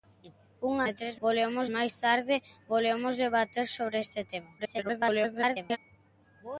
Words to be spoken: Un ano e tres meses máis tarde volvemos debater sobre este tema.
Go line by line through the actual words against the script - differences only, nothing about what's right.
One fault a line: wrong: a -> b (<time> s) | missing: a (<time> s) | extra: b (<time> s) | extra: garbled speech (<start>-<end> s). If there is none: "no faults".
missing: ano (0.8 s)
wrong: meses -> volvemos (1.2 s)
extra: garbled speech (4.6-5.8 s)